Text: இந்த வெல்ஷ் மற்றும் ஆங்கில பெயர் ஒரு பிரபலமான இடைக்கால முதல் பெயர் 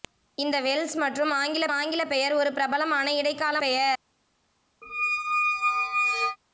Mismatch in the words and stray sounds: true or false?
true